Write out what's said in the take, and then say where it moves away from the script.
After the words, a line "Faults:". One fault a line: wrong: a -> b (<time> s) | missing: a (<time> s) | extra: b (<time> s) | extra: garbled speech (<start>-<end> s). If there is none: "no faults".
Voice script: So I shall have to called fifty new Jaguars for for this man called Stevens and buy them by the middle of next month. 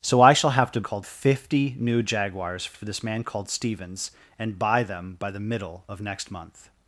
So I shall have to called fifty new Jaguars for for this man called Stevens and buy them by the middle of next month.
Faults:
no faults